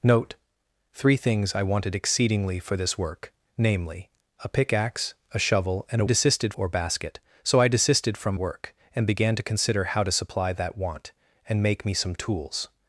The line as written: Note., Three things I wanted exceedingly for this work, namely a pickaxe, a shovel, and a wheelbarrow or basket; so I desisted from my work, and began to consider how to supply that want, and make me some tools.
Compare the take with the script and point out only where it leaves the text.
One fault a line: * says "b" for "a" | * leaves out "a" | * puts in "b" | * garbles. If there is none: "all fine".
* says "desisted" for "wheelbarrow"
* leaves out "my"